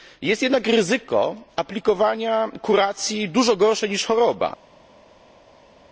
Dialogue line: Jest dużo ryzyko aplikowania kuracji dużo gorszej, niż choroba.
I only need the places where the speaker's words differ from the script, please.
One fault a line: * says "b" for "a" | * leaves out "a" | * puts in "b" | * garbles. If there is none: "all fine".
* says "jednak" for "dużo"